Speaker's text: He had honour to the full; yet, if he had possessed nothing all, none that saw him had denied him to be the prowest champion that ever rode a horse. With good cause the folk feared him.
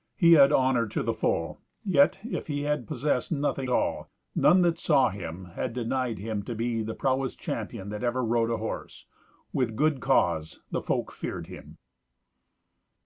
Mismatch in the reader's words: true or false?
false